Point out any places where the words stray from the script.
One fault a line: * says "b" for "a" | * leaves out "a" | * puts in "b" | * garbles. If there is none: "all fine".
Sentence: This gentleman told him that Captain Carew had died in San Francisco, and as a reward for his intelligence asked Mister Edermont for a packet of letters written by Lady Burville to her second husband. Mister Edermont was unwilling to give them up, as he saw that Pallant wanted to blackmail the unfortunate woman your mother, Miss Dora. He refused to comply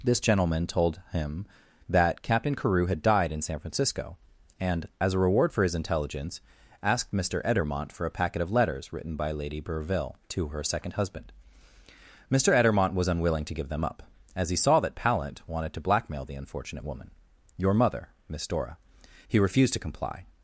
all fine